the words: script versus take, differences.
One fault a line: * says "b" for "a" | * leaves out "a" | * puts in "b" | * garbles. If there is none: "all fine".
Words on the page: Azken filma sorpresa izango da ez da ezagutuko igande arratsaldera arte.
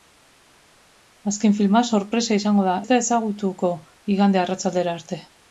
all fine